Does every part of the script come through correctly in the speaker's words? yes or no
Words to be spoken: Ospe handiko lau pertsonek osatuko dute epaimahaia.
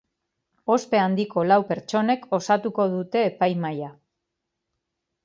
yes